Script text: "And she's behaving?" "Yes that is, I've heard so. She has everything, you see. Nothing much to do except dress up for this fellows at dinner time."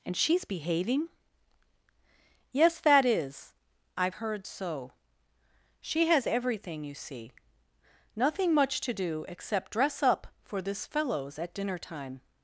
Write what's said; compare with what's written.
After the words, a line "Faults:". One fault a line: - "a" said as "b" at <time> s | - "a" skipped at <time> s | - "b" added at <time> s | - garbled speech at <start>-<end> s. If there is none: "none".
"And she's behaving?" "Yes that is, I've heard so. She has everything, you see. Nothing much to do except dress up for this fellows at dinner time."
Faults:
none